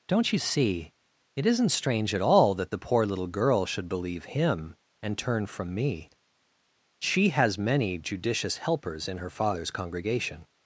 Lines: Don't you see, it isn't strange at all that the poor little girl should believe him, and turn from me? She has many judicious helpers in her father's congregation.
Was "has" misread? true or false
false